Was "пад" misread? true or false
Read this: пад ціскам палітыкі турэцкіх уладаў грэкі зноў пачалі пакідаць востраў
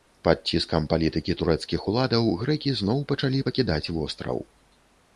false